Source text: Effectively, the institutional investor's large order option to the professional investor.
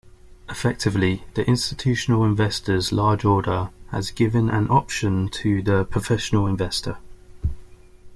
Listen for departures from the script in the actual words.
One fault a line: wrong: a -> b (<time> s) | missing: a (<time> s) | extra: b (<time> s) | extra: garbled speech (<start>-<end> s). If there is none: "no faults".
extra: has given an (3.9 s)